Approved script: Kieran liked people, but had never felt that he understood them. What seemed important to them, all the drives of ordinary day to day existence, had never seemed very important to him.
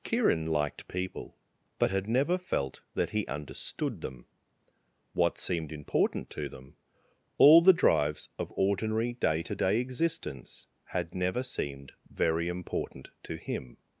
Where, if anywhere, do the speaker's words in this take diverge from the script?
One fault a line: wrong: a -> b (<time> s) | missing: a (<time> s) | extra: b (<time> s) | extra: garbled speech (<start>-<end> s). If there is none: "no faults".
no faults